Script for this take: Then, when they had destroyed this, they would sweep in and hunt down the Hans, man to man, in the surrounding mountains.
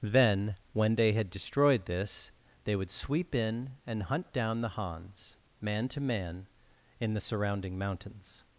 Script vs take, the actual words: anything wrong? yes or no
no